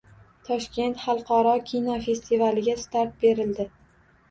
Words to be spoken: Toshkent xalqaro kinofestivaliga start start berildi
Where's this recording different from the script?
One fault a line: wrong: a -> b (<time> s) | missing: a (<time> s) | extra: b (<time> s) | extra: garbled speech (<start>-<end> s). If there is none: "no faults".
missing: start (3.2 s)